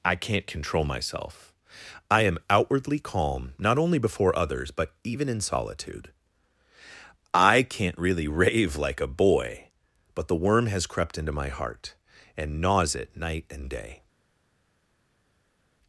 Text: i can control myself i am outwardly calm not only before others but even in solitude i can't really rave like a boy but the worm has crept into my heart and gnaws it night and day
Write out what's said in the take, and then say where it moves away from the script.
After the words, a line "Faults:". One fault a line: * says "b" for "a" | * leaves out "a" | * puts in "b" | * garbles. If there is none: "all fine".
i can't control myself i am outwardly calm not only before others but even in solitude i can't really rave like a boy but the worm has crept into my heart and gnaws it night and day
Faults:
* says "can't" for "can"